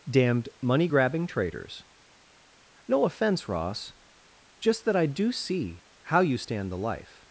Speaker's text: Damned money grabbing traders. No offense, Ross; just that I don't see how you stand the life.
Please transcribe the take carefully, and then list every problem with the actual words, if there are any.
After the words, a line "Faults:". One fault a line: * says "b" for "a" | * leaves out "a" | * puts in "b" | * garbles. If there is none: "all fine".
Damned money grabbing traders. No offense, Ross; just that I do see how you stand the life.
Faults:
* says "do" for "don't"